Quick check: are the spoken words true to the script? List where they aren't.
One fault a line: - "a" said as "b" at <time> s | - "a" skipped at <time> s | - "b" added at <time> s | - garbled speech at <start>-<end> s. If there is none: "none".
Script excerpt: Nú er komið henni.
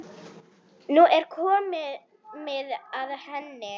- "að" added at 3.0 s